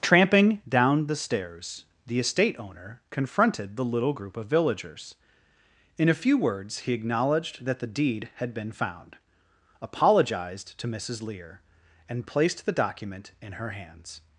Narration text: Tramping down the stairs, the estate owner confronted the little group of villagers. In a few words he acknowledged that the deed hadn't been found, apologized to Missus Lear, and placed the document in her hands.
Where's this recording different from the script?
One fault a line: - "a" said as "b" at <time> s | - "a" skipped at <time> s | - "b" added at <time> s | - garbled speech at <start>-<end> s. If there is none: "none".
- "hadn't" said as "had" at 8.4 s